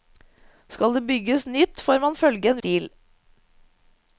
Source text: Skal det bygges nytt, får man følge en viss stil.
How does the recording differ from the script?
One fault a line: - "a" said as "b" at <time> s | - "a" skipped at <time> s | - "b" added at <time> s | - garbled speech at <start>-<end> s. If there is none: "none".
- "viss" skipped at 2.6 s